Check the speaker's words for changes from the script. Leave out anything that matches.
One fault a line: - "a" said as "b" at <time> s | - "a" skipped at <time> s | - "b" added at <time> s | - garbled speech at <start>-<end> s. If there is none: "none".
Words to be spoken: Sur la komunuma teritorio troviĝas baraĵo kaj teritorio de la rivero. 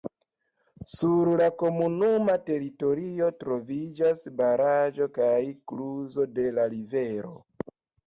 - "teritorio" said as "kluzo" at 5.8 s